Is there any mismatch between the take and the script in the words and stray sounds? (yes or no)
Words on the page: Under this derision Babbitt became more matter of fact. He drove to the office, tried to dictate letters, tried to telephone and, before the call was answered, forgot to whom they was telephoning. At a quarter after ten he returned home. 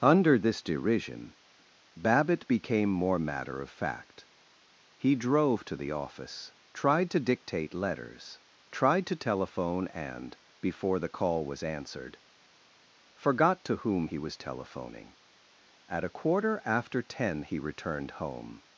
yes